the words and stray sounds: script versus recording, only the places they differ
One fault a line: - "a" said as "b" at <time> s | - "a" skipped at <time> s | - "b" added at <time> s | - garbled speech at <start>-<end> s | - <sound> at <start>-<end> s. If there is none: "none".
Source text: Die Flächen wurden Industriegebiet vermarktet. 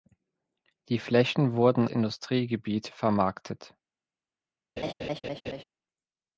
- laugh at 4.8-5.6 s